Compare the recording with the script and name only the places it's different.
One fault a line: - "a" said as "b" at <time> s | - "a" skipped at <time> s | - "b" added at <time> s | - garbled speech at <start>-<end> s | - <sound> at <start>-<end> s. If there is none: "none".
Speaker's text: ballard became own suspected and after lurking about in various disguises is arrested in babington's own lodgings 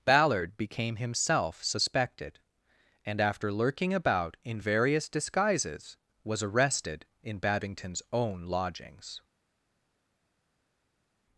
- "own" said as "himself" at 0.9 s
- "is" said as "was" at 6.2 s